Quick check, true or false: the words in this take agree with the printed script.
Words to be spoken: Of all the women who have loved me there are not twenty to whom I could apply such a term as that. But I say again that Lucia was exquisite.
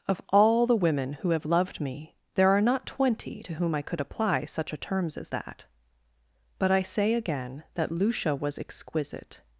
false